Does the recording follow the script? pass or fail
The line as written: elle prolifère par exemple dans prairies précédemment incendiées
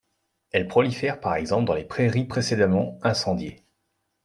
fail